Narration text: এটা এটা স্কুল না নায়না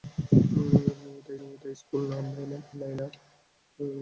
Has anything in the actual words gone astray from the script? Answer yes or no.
no